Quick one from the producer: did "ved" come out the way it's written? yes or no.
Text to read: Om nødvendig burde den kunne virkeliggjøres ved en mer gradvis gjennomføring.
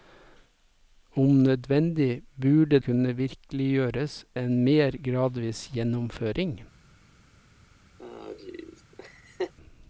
no